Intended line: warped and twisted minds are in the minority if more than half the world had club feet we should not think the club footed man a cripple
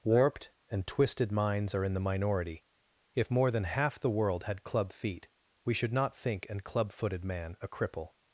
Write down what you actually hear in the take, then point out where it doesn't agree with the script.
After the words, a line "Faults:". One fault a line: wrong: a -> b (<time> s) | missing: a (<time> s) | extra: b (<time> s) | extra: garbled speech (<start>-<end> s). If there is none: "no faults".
warped and twisted minds are in the minority if more than half the world had club feet we should not think an club footed man a cripple
Faults:
wrong: the -> an (6.5 s)